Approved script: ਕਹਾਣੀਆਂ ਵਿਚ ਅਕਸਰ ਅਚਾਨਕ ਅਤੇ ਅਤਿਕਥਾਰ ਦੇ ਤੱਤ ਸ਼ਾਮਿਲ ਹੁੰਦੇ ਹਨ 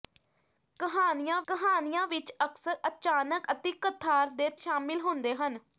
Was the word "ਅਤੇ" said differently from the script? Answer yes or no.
yes